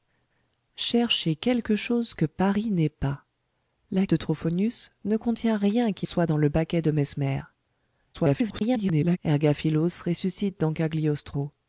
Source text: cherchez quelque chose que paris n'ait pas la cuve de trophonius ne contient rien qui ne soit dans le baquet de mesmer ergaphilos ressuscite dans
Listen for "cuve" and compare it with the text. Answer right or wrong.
wrong